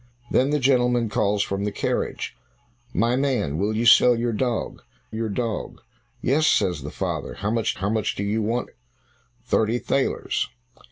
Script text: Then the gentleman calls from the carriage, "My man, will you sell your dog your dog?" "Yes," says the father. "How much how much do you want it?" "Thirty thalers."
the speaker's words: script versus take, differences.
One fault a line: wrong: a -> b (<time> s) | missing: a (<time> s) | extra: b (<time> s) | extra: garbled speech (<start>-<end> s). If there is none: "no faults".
no faults